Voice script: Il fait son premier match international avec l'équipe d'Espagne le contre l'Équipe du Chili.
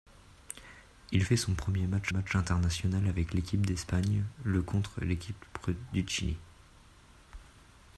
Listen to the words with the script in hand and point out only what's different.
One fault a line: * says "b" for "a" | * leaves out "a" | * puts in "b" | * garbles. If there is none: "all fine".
* puts in "match"